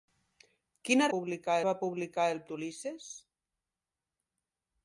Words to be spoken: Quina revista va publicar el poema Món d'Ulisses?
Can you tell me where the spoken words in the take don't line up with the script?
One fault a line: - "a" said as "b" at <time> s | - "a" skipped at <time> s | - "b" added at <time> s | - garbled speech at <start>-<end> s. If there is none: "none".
- "revista" said as "publicar" at 1.1 s
- "poema Món" skipped at 2.4 s